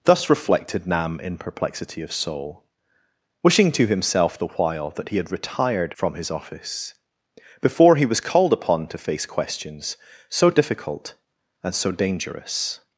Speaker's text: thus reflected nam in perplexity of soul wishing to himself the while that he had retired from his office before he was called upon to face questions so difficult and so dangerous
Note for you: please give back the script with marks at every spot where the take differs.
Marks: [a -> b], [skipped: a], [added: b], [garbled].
thus reflected nam in perplexity of soul wishing to himself the while that he had retired from his office before he was called upon to face questions so difficult and so dangerous